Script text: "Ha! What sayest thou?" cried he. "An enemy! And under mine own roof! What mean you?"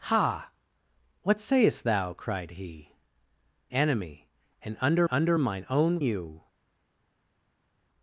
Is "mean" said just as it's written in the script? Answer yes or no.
no